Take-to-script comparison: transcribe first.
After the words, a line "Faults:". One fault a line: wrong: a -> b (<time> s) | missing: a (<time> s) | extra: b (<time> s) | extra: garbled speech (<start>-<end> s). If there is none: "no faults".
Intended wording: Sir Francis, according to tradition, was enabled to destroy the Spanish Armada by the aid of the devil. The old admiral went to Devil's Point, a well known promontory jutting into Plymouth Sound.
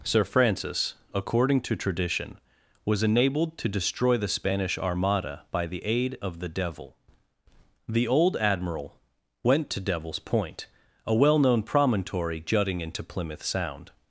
Sir Francis, according to tradition, was enabled to destroy the Spanish Armada by the aid of the devil. The old admiral went to Devil's Point, a well known promontory jutting into Plymouth Sound.
Faults:
no faults